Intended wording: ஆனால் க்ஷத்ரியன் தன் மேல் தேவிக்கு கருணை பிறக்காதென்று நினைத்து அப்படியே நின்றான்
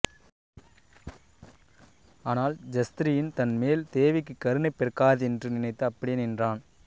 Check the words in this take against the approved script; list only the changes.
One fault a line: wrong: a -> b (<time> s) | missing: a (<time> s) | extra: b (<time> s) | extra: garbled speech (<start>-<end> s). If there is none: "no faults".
no faults